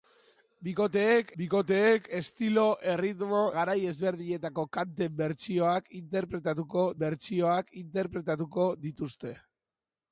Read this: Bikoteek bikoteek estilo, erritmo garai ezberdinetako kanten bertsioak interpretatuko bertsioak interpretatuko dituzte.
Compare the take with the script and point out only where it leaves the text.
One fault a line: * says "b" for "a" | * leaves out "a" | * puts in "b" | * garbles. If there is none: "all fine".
all fine